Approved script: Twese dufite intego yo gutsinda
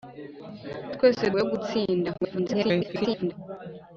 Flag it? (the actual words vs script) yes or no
yes